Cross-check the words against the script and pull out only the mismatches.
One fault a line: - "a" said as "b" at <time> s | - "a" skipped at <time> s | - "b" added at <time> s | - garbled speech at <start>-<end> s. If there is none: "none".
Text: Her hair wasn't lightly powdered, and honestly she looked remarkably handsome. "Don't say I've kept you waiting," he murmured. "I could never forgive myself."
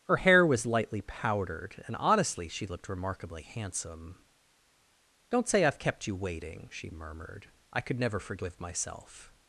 - "wasn't" said as "was" at 0.5 s
- "he" said as "she" at 6.7 s